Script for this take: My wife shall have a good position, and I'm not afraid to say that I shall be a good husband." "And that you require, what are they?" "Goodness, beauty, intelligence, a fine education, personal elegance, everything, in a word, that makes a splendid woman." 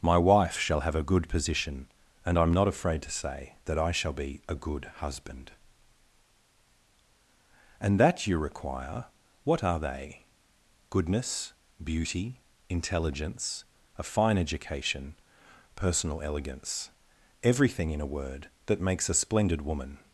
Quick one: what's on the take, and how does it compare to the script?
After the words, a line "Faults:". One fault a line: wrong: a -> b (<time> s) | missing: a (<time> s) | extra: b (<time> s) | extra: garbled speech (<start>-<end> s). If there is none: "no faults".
My wife shall have a good position, and I'm not afraid to say that I shall be a good husband." "And that you require, what are they?" "Goodness, beauty, intelligence, a fine education, personal elegance, everything, in a word, that makes a splendid woman."
Faults:
no faults